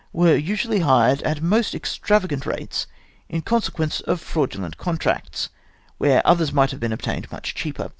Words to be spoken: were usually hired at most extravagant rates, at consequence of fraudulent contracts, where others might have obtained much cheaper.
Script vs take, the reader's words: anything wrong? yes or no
yes